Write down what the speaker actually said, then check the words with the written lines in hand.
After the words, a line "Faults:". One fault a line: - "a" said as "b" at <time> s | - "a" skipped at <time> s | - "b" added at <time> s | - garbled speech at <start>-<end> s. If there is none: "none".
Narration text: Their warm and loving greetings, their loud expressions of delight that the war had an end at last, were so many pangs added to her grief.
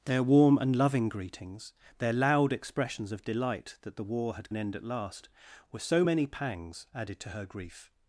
Their warm and loving greetings, their loud expressions of delight that the war had an end at last, were so many pangs added to her grief.
Faults:
none